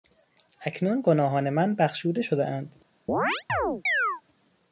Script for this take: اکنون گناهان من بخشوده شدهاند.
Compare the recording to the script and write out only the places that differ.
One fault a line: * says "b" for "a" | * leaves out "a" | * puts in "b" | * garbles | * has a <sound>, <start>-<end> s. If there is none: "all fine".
* has a chirp, 3.1-4.2 s